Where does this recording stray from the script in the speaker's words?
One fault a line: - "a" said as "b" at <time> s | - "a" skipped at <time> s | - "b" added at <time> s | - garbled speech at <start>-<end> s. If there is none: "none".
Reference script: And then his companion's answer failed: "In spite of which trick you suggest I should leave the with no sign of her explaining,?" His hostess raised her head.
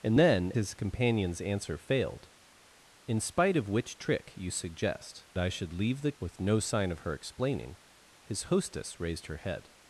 none